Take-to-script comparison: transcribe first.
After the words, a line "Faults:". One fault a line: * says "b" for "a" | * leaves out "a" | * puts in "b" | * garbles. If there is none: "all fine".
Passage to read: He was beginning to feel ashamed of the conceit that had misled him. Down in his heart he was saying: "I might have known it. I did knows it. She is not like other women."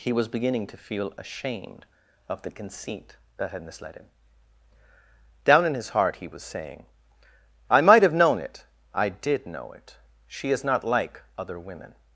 He was beginning to feel ashamed of the conceit that had misled him. Down in his heart he was saying: "I might have known it. I did know it. She is not like other women."
Faults:
* says "know" for "knows"